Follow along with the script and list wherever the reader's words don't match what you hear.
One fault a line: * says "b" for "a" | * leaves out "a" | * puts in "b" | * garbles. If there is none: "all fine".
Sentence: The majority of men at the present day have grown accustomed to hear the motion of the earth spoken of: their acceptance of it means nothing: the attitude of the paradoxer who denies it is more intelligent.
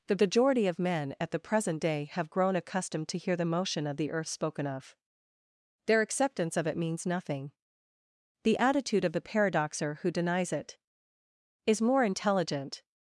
all fine